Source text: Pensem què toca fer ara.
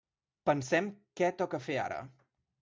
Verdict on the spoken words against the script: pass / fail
pass